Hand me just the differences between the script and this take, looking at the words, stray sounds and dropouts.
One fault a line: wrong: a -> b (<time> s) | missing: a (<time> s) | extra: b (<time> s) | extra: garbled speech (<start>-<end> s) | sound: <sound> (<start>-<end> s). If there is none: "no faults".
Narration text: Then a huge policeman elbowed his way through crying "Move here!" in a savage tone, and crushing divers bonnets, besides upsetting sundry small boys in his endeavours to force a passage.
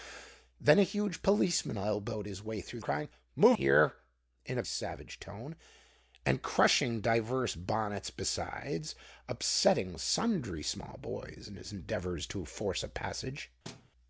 sound: thud (13.6-13.9 s)